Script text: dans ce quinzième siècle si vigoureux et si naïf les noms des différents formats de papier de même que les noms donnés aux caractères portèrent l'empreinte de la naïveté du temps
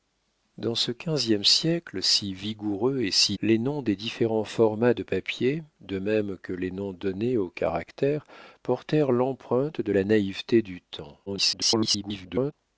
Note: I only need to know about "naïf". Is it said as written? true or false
false